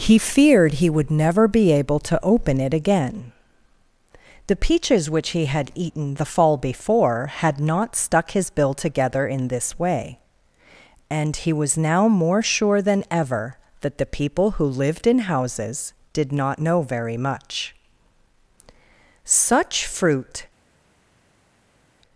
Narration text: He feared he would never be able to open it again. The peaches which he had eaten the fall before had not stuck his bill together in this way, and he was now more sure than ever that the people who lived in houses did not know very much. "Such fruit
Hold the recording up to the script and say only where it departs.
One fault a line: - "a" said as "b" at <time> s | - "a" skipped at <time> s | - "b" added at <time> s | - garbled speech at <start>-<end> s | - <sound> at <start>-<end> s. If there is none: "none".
none